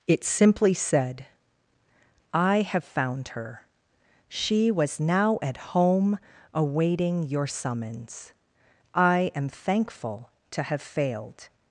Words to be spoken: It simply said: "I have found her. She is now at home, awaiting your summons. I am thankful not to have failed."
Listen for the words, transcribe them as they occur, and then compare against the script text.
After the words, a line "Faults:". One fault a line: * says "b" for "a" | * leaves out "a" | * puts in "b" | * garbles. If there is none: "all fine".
It simply said: "I have found her. She was now at home, awaiting your summons. I am thankful to have failed."
Faults:
* says "was" for "is"
* leaves out "not"